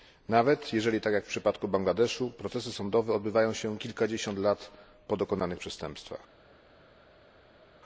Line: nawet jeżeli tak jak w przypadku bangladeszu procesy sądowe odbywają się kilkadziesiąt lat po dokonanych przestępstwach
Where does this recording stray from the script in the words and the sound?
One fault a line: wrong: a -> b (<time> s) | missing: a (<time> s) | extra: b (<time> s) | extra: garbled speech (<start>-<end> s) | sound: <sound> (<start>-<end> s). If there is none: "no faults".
no faults